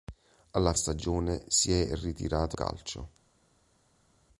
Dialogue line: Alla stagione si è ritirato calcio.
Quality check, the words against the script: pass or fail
pass